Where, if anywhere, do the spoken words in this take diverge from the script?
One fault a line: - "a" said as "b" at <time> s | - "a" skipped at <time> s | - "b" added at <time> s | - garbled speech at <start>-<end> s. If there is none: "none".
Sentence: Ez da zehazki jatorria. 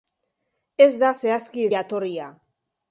none